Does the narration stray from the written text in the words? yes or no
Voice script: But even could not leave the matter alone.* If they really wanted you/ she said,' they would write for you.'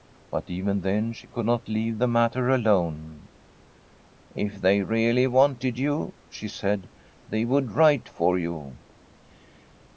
yes